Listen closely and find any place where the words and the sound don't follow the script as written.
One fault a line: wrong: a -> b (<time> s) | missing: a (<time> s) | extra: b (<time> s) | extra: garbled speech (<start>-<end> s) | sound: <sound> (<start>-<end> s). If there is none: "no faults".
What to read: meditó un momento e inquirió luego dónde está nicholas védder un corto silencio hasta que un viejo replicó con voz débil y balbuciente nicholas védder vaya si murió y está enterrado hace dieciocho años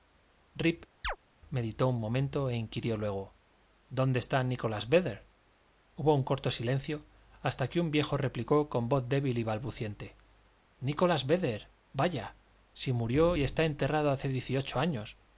sound: chirp (1.0-1.2 s)
extra: hubo (5.9 s)